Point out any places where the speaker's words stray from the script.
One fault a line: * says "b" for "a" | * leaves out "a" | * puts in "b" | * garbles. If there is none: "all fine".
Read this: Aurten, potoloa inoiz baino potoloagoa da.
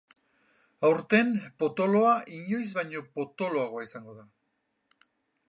* puts in "izango"